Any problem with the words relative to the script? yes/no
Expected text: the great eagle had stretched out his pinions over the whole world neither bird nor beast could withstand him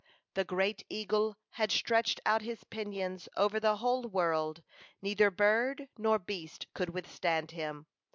no